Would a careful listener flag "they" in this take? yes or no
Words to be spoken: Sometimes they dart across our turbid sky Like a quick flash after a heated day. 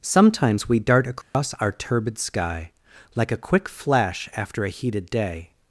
yes